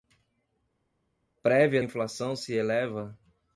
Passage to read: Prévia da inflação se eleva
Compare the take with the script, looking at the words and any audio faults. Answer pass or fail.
fail